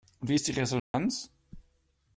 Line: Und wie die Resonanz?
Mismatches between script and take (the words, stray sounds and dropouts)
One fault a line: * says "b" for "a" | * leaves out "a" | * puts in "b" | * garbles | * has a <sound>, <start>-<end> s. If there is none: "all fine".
* puts in "ist"
* has a dropout, 0.8-0.9 s